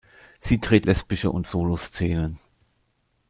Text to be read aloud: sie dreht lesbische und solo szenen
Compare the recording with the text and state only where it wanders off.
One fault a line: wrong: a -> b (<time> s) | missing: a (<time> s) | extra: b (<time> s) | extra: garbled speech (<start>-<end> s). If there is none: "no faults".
no faults